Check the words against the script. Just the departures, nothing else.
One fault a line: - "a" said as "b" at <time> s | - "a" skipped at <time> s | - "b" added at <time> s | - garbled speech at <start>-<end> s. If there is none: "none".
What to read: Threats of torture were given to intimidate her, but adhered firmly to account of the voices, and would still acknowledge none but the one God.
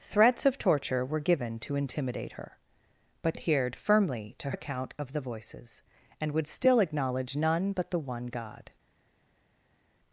none